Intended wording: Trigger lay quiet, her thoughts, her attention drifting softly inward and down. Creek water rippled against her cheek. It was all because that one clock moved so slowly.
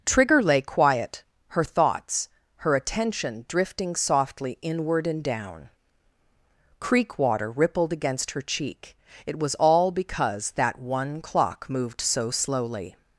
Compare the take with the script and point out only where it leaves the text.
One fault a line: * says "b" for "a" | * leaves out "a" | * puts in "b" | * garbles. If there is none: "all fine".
all fine